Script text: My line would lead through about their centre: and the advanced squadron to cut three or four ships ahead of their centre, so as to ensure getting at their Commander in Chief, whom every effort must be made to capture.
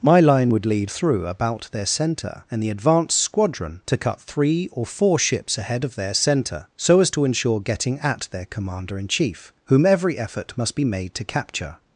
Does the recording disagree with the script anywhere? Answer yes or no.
no